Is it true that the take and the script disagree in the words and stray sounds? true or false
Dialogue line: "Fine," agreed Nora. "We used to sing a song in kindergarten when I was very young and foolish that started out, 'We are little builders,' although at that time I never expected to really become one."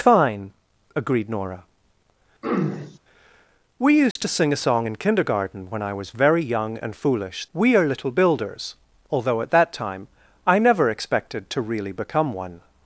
true